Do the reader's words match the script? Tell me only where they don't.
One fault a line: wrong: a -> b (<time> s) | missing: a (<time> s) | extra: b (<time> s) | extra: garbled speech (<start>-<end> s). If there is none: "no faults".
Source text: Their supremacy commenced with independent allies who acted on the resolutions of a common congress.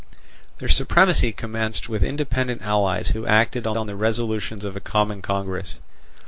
extra: on (3.8 s)